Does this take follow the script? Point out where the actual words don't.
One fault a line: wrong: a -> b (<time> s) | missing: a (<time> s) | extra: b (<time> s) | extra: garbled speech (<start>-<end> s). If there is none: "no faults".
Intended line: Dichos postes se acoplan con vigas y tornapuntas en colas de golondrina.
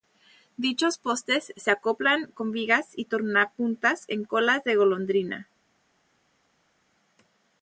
no faults